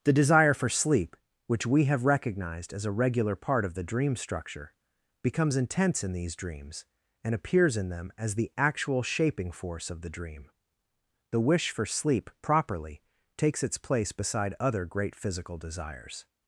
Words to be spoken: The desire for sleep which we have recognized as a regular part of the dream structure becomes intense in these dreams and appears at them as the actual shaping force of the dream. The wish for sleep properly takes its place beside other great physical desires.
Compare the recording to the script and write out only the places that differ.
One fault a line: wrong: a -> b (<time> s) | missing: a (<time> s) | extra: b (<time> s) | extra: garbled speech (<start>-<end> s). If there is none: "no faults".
wrong: at -> in (7.8 s)